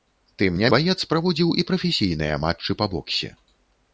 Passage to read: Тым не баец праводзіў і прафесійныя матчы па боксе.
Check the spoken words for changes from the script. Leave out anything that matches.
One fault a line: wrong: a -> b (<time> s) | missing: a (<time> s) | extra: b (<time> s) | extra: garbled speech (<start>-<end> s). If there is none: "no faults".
no faults